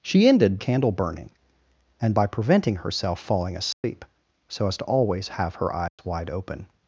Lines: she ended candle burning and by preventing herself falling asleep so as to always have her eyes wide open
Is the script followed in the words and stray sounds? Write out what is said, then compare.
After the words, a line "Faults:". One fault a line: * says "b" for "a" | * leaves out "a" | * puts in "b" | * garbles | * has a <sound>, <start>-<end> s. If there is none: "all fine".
she ended candle burning and by preventing herself falling asleep so as to always have her eyes wide open
Faults:
* has a dropout, 3.7-3.8 s
* has a dropout, 5.9-6.0 s